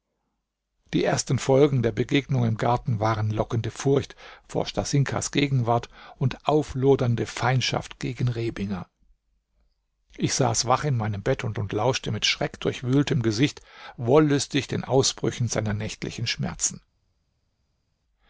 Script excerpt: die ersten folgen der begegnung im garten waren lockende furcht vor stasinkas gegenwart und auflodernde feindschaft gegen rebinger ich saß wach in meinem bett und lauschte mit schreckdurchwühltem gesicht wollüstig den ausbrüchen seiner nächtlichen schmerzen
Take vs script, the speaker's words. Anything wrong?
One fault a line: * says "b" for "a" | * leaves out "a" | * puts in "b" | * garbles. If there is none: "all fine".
* puts in "und"